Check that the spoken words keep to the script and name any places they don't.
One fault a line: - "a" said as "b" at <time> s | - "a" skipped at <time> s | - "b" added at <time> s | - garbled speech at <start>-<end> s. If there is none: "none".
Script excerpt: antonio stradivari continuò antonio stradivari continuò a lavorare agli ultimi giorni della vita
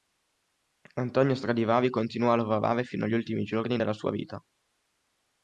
- "antonio stradivari continuò" skipped at 2.3 s
- "fino" added at 2.8 s
- "sua" added at 3.9 s